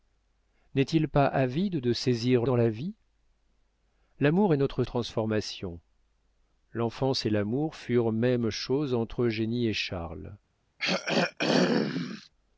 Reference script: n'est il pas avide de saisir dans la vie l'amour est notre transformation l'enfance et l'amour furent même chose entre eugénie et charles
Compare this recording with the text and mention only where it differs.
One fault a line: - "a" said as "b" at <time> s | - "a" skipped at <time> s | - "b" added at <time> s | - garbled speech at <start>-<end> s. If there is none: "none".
none